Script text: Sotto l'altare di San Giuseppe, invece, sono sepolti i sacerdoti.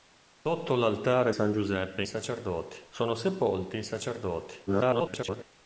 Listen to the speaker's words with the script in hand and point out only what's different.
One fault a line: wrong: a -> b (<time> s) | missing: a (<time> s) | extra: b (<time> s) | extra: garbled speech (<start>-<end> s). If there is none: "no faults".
missing: di (1.3 s)
wrong: invece -> sacerdoti (2.1 s)
extra: garbled speech (4.7-5.4 s)